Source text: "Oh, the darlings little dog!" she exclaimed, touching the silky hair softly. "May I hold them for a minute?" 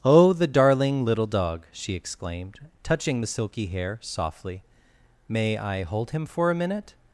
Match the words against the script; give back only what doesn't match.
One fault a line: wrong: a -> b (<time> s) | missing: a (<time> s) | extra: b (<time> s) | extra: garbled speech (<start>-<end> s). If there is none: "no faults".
wrong: darlings -> darling (0.5 s)
wrong: them -> him (6.1 s)